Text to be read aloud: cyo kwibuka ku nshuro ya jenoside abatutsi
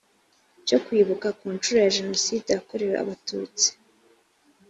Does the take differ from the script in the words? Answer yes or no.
yes